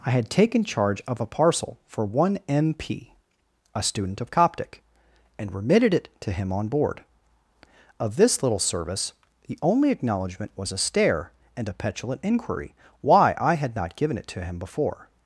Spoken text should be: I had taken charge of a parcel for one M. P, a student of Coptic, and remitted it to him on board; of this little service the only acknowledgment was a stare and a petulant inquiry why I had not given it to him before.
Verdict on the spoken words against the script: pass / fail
pass